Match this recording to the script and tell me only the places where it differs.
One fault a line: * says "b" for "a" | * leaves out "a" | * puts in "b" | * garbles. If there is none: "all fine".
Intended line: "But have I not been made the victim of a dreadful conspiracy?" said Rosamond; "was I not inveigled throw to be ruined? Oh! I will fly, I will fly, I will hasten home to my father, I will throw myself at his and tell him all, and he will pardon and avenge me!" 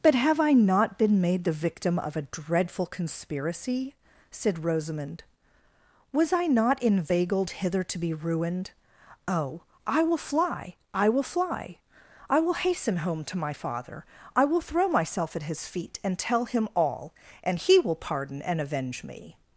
* says "hither" for "throw"
* puts in "feet"